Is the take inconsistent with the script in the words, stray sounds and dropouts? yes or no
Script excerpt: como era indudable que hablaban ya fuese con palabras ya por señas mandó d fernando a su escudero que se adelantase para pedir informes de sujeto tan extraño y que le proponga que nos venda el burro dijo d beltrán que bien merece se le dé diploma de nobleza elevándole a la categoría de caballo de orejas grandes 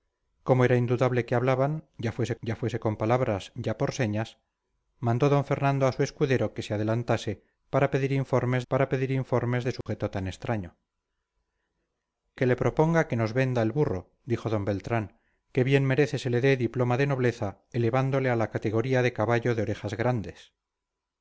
yes